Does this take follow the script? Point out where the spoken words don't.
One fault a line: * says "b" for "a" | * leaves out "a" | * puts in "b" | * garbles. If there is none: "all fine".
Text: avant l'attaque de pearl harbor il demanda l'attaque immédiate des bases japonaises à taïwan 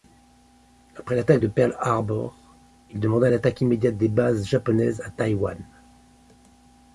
* says "après" for "avant"